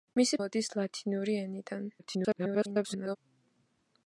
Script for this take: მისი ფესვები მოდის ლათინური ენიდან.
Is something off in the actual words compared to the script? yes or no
yes